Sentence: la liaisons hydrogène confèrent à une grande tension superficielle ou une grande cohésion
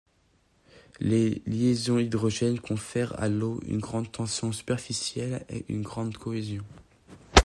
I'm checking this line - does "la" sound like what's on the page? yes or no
no